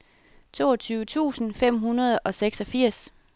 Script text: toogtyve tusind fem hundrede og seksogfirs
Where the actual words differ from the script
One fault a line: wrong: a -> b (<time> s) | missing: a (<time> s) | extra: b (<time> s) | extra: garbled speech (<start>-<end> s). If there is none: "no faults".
no faults